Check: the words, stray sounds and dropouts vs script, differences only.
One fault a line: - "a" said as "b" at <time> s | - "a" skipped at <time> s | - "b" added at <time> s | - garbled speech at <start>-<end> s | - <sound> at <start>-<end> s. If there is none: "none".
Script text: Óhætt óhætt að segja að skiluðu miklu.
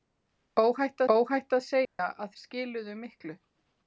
- dropout at 1.8-2.0 s